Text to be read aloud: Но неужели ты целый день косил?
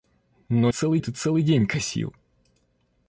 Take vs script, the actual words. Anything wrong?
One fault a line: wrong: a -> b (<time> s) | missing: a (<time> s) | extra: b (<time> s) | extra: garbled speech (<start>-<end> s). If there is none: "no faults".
wrong: неужели -> целый (0.7 s)